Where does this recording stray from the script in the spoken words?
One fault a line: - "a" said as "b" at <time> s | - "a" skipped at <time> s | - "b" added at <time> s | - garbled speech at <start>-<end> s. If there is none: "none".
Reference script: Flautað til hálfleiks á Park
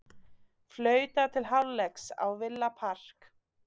- "Villa" added at 2.4 s